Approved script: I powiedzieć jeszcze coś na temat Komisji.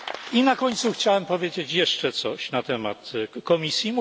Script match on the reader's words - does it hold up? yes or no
no